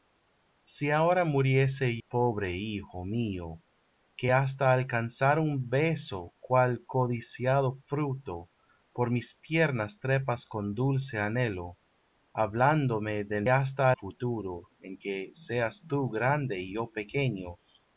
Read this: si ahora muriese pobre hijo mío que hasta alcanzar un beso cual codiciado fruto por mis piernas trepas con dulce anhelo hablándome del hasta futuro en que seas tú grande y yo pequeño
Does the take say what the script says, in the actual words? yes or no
yes